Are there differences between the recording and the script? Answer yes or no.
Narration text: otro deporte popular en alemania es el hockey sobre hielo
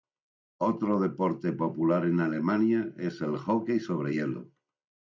no